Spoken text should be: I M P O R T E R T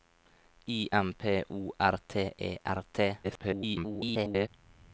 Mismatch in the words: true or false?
true